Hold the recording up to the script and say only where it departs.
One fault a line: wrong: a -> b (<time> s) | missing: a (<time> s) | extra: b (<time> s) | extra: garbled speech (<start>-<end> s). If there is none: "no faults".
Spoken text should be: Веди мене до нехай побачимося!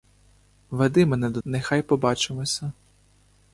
no faults